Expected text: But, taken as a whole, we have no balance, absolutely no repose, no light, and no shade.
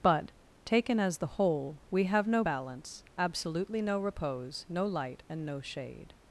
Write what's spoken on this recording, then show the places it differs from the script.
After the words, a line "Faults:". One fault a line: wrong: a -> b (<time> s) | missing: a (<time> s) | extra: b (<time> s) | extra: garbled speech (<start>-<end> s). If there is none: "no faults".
But, taken as the whole, we have no balance, absolutely no repose, no light, and no shade.
Faults:
wrong: a -> the (1.2 s)